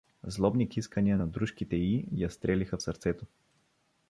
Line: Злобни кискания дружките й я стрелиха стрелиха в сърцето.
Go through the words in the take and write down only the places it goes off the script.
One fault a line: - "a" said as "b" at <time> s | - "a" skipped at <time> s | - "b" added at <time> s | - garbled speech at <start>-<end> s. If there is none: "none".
- "на" added at 1.2 s
- "стрелиха" skipped at 2.8 s